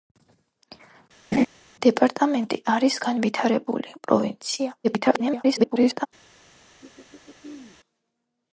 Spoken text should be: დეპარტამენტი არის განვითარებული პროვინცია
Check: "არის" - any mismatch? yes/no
no